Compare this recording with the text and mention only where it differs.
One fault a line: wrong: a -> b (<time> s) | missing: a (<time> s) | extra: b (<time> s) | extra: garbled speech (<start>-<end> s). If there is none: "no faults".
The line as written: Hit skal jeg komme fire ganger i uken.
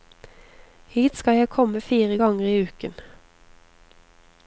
no faults